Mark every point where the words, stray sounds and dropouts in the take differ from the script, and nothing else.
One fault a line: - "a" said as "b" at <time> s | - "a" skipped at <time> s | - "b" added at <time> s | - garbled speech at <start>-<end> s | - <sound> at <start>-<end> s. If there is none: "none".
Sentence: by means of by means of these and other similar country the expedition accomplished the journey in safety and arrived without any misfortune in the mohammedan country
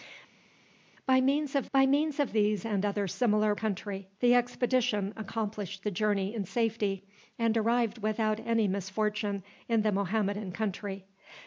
none